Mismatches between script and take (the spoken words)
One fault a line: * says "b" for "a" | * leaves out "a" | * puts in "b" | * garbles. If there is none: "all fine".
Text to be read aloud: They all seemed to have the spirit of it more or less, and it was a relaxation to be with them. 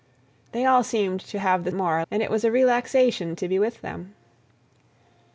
* leaves out "spirit of it"
* leaves out "less"